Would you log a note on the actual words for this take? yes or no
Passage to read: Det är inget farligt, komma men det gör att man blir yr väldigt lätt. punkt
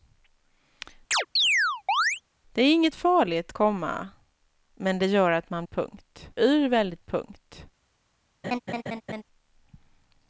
yes